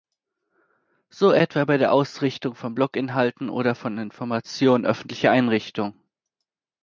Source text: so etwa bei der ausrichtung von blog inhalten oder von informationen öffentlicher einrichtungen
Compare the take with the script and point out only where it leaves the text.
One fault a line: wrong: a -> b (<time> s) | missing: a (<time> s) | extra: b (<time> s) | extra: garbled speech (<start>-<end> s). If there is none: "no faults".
no faults